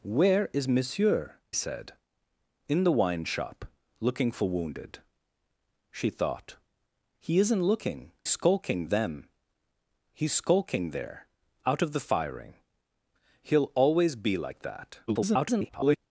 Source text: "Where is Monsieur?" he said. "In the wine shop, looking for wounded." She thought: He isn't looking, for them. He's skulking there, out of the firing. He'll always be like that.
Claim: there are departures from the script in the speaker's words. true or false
true